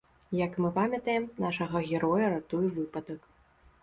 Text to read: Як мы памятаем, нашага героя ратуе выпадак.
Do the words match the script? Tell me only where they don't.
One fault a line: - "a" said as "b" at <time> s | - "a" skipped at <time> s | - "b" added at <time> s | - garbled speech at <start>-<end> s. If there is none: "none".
none